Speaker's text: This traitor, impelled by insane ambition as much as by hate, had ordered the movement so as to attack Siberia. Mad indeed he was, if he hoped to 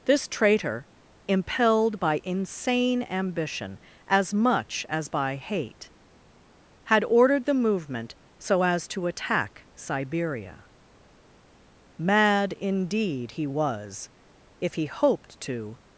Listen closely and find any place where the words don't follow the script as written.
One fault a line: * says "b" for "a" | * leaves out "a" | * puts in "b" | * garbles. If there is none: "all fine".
all fine